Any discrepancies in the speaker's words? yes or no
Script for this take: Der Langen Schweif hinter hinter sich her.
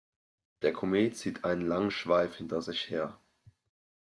yes